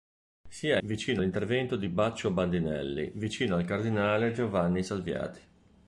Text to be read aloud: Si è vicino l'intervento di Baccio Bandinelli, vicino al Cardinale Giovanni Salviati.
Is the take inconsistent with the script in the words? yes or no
no